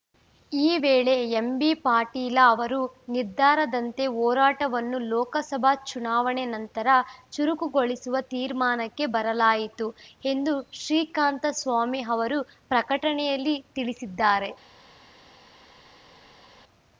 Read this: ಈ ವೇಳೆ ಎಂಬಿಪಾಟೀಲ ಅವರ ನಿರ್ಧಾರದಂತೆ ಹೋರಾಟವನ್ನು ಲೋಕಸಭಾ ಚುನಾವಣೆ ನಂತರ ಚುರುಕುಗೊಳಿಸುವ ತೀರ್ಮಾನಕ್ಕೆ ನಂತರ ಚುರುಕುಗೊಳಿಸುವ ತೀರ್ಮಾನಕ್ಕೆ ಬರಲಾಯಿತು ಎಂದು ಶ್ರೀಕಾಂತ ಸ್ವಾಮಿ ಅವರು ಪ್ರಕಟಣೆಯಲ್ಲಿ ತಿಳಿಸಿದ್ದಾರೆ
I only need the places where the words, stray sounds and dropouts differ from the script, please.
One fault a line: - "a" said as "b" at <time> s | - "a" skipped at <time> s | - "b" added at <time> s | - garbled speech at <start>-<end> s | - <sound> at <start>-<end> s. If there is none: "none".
- "ನಂತರ ಚುರುಕುಗೊಳಿಸುವ ತೀರ್ಮಾನಕ್ಕೆ" skipped at 9.1 s